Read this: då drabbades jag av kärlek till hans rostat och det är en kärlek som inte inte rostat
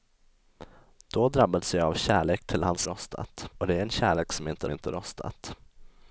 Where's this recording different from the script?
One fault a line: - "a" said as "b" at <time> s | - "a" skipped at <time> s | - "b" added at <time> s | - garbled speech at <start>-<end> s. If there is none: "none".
none